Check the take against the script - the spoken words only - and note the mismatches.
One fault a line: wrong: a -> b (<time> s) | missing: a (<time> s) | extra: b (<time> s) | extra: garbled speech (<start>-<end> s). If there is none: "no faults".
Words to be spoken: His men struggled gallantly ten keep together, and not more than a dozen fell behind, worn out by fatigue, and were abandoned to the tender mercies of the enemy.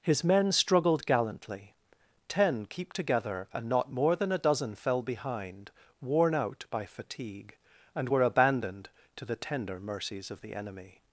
no faults